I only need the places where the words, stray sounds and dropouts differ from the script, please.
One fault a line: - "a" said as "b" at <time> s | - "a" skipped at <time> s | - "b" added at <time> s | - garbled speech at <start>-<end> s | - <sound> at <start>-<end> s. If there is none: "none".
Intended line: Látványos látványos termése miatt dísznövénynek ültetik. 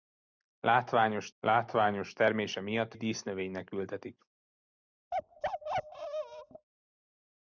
- bark at 5.1-6.7 s